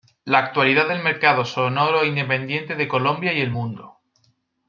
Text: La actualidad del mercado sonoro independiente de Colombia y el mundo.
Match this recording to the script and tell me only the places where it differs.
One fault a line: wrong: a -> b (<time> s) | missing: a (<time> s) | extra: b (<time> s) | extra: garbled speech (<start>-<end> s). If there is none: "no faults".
no faults